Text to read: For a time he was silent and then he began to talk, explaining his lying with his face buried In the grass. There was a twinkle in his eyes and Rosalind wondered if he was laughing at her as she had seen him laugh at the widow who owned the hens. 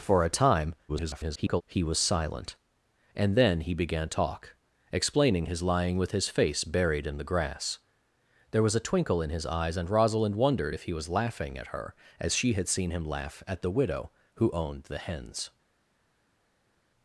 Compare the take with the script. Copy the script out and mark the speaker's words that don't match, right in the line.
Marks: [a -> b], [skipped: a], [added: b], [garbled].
For a time [garbled] he was silent and then he began [skipped: to] talk, explaining his lying with his face buried In the grass. There was a twinkle in his eyes and Rosalind wondered if he was laughing at her as she had seen him laugh at the widow who owned the hens.